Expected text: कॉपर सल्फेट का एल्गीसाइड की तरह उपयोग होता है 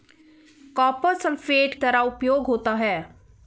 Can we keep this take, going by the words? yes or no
no